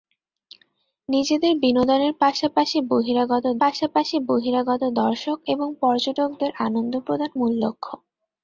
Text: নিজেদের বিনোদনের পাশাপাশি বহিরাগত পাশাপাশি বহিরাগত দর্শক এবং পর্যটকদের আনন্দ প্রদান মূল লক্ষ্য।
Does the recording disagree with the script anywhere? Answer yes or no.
no